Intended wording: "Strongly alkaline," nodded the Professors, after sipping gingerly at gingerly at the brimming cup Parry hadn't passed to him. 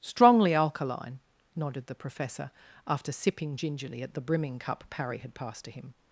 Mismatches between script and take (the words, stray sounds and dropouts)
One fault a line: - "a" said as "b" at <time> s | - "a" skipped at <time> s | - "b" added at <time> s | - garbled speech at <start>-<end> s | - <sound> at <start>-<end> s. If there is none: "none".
- "Professors" said as "Professor" at 1.9 s
- "gingerly at" skipped at 4.1 s
- "hadn't" said as "had" at 5.2 s